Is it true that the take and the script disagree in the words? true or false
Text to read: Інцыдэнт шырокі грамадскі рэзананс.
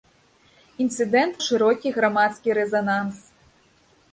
false